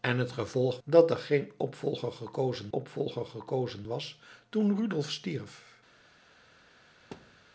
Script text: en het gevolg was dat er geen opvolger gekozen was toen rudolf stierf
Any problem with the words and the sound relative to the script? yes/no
yes